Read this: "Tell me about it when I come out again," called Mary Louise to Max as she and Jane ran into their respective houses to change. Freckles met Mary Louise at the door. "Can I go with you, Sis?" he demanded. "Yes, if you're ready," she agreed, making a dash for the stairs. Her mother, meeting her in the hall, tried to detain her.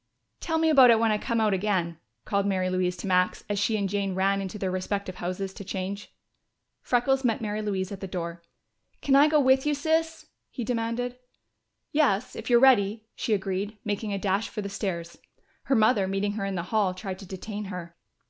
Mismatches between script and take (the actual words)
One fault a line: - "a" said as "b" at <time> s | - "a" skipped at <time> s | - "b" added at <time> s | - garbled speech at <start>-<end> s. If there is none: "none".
none